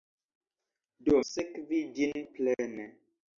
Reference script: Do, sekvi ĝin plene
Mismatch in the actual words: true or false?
false